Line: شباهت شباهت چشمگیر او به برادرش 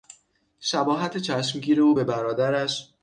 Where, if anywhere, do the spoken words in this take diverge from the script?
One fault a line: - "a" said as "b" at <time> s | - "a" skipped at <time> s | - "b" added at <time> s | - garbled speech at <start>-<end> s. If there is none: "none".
- "شباهت" skipped at 1.2 s